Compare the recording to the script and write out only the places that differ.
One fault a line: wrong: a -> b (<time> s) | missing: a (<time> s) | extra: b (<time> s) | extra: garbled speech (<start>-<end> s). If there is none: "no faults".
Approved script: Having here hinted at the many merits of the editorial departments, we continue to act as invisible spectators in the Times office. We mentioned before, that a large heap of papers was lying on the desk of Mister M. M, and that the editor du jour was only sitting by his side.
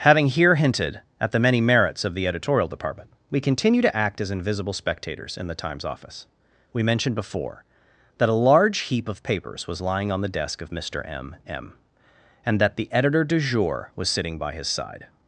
wrong: departments -> department (2.7 s)
missing: only (14.1 s)